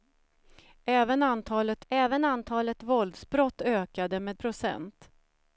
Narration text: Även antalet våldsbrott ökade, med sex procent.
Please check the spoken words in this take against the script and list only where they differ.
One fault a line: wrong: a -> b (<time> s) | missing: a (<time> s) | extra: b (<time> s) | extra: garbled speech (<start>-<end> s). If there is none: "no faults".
extra: även antalet (1.9 s)
missing: sex (4.4 s)